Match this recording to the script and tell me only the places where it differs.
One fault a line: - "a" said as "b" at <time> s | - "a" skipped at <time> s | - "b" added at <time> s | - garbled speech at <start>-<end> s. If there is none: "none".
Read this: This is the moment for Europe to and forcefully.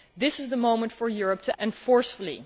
none